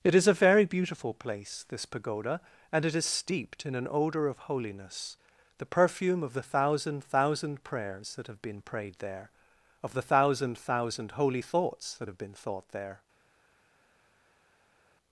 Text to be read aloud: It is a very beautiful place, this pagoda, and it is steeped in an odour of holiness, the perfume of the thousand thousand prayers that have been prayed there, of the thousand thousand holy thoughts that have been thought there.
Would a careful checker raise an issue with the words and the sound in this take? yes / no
no